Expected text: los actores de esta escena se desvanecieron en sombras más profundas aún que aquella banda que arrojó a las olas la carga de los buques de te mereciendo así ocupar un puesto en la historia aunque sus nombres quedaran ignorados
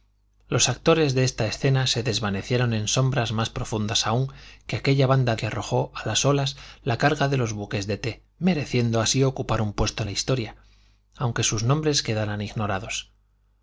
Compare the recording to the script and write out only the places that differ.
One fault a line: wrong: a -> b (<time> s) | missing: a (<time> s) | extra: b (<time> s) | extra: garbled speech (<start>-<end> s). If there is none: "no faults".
no faults